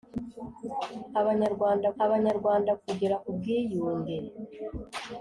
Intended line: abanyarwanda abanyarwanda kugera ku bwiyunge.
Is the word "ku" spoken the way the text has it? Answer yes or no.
yes